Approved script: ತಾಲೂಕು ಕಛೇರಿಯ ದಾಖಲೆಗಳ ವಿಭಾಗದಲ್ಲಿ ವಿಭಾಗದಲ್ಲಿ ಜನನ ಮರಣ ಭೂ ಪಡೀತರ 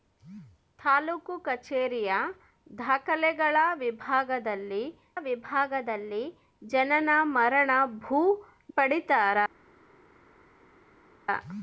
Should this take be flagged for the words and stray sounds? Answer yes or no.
no